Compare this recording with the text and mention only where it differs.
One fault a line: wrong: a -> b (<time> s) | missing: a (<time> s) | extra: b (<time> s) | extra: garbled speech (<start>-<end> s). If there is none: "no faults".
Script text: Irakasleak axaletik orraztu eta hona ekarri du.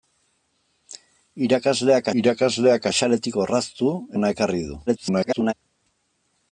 extra: irakasleak (2.2 s)
missing: eta (3.9 s)
extra: garbled speech (4.9-5.5 s)